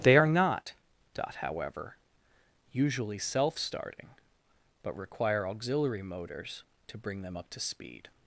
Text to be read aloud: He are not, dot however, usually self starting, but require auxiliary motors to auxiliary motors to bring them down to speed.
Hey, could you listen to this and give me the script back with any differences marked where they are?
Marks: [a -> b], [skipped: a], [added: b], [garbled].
[He -> They] are not, dot however, usually self starting, but require auxiliary motors to [skipped: auxiliary motors to] bring them [down -> up] to speed.